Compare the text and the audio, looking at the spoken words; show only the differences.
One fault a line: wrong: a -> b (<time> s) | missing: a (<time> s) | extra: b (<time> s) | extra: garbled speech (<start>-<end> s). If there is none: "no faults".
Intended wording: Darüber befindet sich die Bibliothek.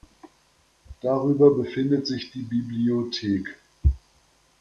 no faults